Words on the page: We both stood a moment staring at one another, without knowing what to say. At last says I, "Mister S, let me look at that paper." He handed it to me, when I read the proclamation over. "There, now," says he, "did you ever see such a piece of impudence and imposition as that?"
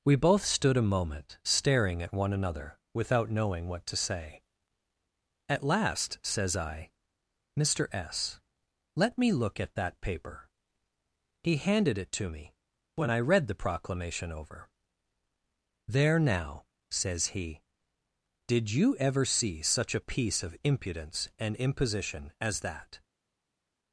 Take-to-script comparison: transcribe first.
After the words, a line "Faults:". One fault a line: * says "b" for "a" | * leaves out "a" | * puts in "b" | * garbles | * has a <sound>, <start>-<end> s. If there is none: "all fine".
We both stood a moment staring at one another, without knowing what to say. At last says I, "Mister S, let me look at that paper." He handed it to me, when I read the proclamation over. "There, now," says he, "did you ever see such a piece of impudence and imposition as that?"
Faults:
all fine